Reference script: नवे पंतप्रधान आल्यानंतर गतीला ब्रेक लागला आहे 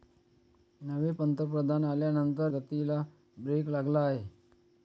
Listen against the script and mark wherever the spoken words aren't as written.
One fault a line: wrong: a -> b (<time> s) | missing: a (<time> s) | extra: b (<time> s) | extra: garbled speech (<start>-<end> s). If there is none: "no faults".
no faults